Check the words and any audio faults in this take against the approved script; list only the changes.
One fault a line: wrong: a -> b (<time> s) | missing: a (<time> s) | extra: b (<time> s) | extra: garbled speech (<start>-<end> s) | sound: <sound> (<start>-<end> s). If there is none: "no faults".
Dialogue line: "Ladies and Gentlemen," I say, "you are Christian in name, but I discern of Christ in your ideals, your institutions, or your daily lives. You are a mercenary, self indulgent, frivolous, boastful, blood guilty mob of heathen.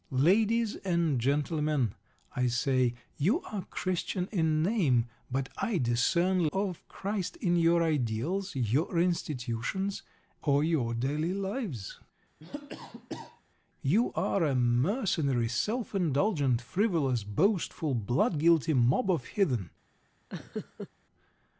sound: cough (12.4-13.4 s)
sound: laugh (20.3-20.9 s)